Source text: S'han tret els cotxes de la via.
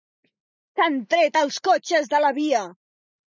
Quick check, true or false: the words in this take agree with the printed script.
true